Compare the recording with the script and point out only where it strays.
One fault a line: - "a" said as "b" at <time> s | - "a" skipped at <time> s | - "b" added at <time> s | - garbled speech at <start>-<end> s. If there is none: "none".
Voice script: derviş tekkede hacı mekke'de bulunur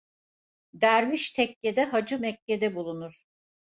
none